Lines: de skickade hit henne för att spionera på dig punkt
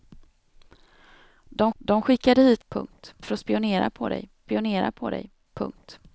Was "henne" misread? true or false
true